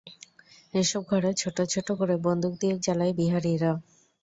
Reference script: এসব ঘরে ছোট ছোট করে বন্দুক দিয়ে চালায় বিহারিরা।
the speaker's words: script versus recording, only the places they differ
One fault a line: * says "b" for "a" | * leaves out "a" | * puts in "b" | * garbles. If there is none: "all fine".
all fine